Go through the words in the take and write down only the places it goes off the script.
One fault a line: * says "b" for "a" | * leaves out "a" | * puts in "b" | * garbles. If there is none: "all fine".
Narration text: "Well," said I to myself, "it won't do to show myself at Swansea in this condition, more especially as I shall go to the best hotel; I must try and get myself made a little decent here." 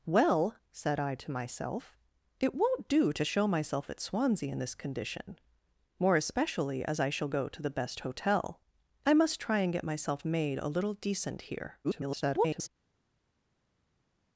* garbles